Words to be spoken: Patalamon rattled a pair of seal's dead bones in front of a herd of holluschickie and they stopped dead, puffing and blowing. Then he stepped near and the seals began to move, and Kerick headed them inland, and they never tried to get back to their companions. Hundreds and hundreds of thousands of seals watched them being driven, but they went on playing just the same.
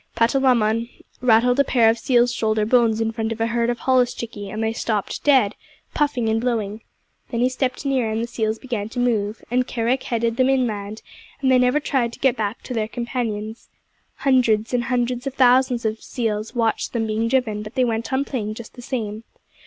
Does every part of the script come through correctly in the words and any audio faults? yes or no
no